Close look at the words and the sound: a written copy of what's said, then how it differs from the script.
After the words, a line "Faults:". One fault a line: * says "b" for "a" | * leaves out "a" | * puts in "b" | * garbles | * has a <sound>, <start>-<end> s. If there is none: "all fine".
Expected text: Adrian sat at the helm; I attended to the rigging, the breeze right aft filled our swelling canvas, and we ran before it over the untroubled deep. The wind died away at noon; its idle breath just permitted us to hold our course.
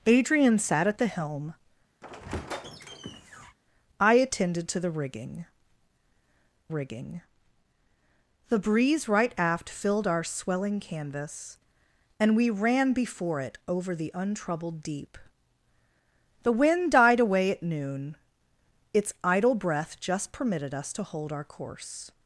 Adrian sat at the helm; I attended to the rigging rigging, the breeze right aft filled our swelling canvas, and we ran before it over the untroubled deep. The wind died away at noon; its idle breath just permitted us to hold our course.
Faults:
* has a squeak, 2.0-3.6 s
* puts in "rigging"